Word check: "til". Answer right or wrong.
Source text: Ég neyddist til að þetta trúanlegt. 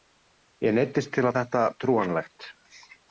right